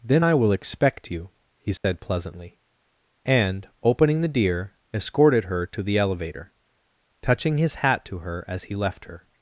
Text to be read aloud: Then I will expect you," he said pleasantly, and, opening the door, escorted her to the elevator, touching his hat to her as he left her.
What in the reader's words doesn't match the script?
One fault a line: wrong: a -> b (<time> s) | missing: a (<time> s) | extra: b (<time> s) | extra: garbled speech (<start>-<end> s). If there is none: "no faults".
wrong: door -> deer (4.3 s)